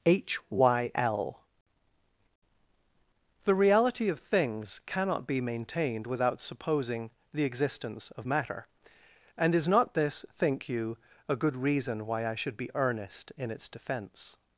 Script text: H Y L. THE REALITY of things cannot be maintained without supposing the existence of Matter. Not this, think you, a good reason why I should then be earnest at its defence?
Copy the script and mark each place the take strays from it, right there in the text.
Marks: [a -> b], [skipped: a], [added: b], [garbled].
H Y L. THE REALITY of things cannot be maintained without supposing the existence of Matter. [added: And is] Not this, think you, a good reason why I should [skipped: then] be earnest [at -> in] its defence?